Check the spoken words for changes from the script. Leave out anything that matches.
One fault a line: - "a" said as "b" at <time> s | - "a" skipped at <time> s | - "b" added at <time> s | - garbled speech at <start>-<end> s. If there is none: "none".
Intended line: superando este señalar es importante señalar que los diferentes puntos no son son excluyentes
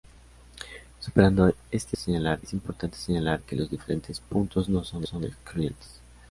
none